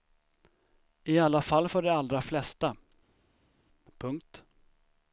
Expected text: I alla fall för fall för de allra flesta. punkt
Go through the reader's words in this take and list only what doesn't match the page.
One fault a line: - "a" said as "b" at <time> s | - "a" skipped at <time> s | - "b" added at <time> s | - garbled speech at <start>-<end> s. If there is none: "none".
- "fall för" skipped at 1.8 s